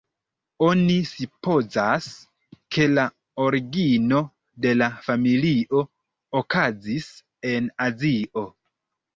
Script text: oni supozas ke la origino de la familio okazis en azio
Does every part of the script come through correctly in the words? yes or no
yes